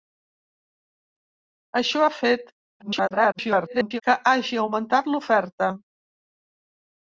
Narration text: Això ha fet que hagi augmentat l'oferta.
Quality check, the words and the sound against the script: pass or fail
fail